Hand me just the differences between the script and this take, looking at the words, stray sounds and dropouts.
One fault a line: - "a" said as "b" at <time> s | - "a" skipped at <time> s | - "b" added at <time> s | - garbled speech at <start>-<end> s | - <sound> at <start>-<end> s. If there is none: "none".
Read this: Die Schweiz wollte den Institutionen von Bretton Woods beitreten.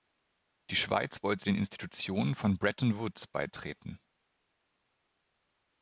none